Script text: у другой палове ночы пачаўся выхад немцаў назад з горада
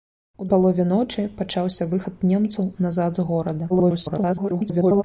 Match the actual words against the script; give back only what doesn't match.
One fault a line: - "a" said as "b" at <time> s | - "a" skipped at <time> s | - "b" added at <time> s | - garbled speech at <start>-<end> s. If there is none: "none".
- "другой" skipped at 0.5 s
- garbled speech at 3.7-5.0 s